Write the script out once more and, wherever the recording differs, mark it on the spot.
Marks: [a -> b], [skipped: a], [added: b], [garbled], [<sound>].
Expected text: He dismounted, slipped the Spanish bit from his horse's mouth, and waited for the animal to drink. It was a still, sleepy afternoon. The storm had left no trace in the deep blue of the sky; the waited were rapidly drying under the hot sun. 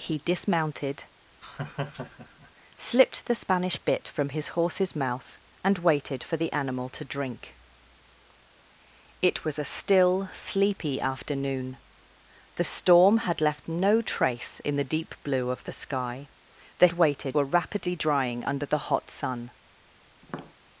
He dismounted, [laugh] slipped the Spanish bit from his horse's mouth, and waited for the animal to drink. It was a still, sleepy afternoon. The storm had left no trace in the deep blue of the sky; the waited were rapidly drying under the hot sun. [tap]